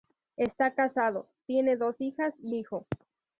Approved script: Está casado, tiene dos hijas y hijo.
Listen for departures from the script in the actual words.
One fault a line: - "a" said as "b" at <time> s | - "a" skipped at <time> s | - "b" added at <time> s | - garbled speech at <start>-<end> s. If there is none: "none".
none